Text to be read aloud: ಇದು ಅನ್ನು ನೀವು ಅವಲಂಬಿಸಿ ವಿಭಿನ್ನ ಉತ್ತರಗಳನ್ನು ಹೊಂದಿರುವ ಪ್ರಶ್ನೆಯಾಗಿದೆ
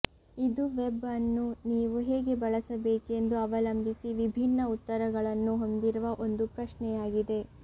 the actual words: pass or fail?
fail